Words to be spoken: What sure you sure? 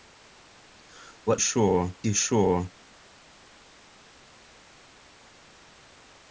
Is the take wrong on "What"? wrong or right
right